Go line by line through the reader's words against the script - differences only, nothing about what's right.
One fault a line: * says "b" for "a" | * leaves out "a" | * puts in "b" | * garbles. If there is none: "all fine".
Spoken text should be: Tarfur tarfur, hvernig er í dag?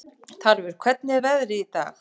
* leaves out "tarfur"
* puts in "veðrið"